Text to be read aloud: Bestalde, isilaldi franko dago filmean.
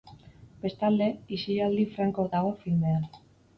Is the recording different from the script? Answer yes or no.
no